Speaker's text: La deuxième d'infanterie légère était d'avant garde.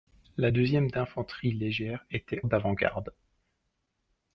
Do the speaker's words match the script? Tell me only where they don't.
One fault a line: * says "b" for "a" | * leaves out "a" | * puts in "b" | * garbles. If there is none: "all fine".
all fine